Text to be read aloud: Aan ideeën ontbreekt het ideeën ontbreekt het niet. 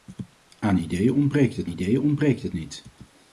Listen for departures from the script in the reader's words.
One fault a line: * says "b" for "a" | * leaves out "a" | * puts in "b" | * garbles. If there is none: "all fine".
all fine